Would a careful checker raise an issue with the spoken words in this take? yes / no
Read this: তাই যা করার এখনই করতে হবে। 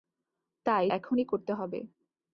yes